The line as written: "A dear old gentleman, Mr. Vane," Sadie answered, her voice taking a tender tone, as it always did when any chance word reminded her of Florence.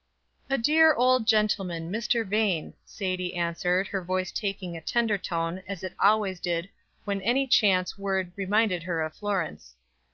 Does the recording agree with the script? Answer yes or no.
yes